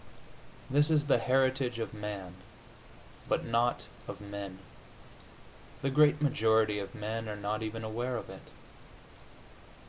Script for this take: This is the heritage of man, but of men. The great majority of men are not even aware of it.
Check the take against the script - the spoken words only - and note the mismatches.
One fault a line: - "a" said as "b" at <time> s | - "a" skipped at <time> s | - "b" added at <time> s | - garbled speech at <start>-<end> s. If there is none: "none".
- "not" added at 3.5 s